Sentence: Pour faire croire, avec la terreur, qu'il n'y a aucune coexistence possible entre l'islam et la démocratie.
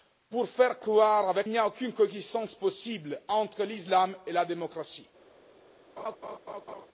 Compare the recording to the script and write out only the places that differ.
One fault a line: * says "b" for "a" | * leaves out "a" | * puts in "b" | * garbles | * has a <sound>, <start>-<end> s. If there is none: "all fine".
* leaves out "la terreur qu'il"
* has a laugh, 6.0-6.9 s